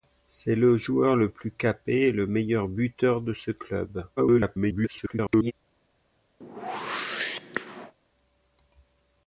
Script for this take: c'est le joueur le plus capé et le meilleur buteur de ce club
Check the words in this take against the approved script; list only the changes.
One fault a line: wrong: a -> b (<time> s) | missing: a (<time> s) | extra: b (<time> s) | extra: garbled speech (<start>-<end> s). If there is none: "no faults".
extra: garbled speech (4.2-5.5 s)